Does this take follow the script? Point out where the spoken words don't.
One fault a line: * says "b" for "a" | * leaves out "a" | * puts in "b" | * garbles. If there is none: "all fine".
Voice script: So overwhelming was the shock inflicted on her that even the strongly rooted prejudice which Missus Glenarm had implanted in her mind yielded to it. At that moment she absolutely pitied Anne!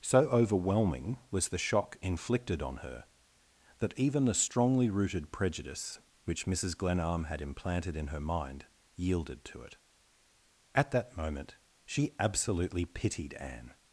all fine